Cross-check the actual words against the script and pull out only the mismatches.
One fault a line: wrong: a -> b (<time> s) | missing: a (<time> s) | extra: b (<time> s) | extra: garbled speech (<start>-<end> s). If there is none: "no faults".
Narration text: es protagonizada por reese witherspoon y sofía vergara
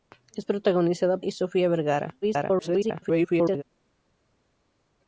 missing: por reese witherspoon (1.2 s)
extra: garbled speech (2.2-3.6 s)